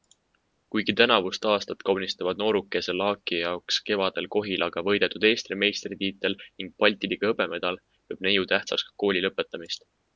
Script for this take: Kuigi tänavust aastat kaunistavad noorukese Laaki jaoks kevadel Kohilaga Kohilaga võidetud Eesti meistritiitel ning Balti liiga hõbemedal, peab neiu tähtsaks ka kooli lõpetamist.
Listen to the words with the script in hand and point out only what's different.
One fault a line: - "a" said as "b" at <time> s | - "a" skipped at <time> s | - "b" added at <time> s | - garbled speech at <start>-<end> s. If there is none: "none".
- "Kohilaga" skipped at 4.8 s